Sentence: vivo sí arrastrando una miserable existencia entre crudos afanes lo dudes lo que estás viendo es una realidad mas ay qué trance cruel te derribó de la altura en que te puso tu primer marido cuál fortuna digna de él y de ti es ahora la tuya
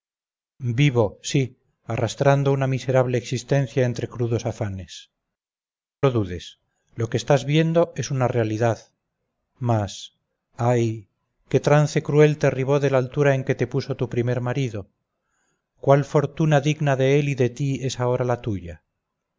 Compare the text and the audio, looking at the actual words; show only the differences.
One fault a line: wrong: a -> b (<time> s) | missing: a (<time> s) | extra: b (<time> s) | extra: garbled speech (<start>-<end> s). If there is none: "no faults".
no faults